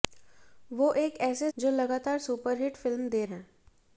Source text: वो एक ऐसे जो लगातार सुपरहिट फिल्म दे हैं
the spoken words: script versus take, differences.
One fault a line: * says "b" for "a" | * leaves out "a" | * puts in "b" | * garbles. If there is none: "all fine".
all fine